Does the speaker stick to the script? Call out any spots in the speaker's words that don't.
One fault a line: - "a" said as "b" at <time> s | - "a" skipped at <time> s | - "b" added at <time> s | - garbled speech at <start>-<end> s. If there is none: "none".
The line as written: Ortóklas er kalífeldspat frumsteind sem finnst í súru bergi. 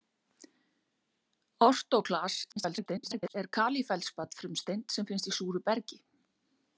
- garbled speech at 2.5-3.3 s